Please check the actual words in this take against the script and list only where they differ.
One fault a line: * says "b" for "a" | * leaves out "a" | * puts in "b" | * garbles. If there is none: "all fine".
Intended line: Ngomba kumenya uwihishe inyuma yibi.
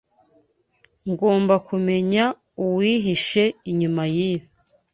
all fine